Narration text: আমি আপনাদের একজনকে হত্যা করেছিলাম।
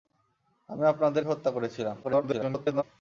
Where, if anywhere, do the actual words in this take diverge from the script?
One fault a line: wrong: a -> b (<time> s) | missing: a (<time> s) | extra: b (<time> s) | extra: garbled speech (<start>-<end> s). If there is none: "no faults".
missing: একজনকে (1.2 s)
extra: garbled speech (2.0-2.8 s)